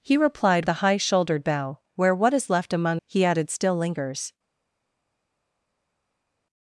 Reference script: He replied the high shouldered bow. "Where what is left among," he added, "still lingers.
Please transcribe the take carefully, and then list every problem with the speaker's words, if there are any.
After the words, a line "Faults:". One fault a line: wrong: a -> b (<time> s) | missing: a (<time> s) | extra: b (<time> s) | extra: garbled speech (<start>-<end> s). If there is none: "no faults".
He replied the high shouldered bow. "Where what is left among," he added, "still lingers.
Faults:
no faults